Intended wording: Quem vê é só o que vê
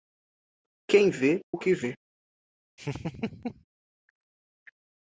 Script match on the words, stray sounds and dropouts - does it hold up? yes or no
no